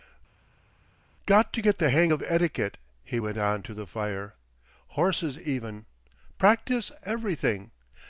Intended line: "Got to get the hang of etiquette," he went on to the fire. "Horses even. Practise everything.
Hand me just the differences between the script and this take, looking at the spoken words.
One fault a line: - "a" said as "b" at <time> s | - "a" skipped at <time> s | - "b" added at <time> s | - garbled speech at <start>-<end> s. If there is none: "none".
none